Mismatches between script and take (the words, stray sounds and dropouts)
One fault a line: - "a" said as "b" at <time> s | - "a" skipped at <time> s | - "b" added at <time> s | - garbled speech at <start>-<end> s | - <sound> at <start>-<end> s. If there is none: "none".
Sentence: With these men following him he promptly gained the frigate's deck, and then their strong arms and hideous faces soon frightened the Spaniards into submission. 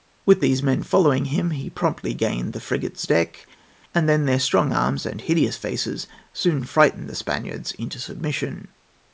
none